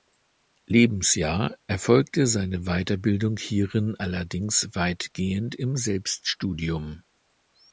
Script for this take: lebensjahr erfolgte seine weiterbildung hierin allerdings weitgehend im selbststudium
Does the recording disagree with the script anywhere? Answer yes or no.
no